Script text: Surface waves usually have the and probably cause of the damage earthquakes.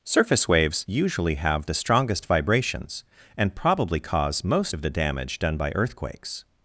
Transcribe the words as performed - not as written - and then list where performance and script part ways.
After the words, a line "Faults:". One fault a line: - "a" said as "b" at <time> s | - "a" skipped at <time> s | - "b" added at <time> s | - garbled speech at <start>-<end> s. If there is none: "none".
Surface waves usually have the strongest vibrations and probably cause most of the damage done by earthquakes.
Faults:
- "strongest vibrations" added at 1.7 s
- "most" added at 4.4 s
- "done by" added at 5.4 s